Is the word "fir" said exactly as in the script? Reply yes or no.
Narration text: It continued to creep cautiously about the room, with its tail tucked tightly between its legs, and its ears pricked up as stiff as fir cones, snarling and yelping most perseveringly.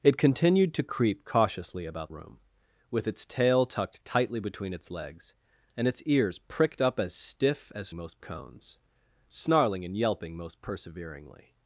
no